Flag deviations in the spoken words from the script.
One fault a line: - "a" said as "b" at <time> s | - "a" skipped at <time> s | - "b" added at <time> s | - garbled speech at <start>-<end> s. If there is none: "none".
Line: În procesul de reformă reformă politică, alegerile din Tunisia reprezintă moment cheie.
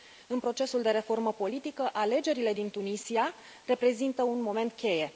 - "reformă" skipped at 1.3 s
- "un" added at 4.2 s